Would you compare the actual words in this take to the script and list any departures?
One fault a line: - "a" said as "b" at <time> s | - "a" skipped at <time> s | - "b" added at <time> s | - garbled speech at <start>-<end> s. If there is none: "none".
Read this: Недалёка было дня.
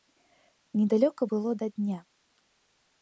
- "да" added at 1.5 s